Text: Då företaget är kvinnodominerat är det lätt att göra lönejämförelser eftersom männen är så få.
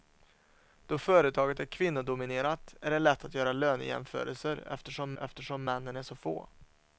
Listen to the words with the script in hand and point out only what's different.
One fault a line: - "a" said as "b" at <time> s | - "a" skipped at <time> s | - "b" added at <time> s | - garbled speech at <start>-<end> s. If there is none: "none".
- "eftersom" added at 5.2 s